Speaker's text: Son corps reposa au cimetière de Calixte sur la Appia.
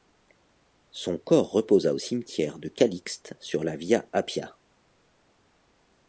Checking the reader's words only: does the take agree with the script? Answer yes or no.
no